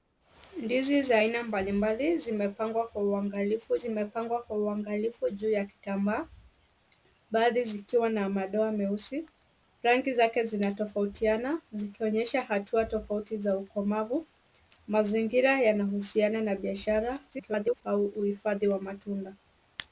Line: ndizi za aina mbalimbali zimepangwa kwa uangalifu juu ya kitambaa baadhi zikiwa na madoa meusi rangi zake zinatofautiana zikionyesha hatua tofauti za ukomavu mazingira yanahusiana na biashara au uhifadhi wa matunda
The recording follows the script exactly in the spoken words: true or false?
false